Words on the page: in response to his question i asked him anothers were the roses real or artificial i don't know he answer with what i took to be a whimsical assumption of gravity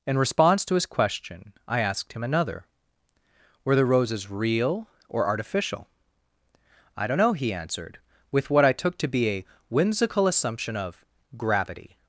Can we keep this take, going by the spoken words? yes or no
no